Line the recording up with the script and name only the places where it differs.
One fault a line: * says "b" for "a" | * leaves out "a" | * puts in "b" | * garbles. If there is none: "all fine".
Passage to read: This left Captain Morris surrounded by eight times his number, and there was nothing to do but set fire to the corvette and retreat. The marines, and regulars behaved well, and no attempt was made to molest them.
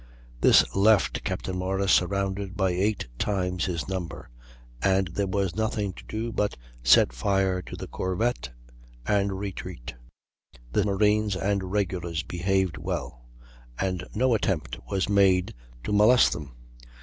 all fine